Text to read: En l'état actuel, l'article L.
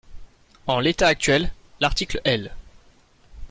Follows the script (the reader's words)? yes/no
yes